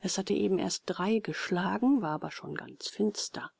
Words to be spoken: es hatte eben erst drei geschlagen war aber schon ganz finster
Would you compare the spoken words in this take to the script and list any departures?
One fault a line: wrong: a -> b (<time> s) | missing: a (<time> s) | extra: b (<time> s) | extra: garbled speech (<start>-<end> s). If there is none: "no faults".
no faults